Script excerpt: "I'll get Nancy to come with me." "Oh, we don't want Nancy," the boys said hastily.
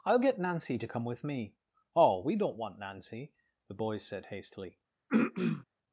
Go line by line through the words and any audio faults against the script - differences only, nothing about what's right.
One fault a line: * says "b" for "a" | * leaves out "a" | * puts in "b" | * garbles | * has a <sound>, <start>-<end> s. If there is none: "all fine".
* has a throat clearing, 5.1-5.6 s